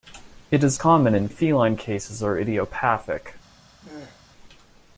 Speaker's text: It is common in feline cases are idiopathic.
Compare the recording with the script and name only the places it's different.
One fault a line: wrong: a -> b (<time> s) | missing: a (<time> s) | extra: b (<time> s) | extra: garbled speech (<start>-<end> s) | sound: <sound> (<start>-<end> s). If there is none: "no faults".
sound: throat clearing (3.8-4.2 s)